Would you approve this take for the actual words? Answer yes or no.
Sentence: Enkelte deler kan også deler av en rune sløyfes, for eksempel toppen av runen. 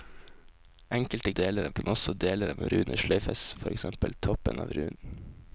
yes